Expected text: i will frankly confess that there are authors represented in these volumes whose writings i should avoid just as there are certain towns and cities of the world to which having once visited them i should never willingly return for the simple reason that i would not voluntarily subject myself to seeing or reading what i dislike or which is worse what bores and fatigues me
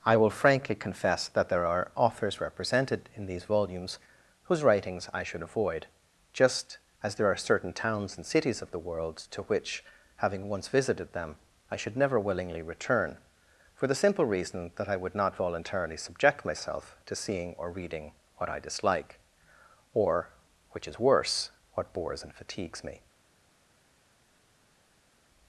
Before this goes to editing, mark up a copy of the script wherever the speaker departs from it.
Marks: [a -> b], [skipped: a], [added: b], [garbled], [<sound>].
i will frankly confess that there are authors represented in these volumes whose writings i should avoid just as there are certain towns and cities of the world to which having once visited them i should never willingly return for the simple reason that i would not voluntarily subject myself to seeing or reading what i dislike or which is worse what bores and fatigues me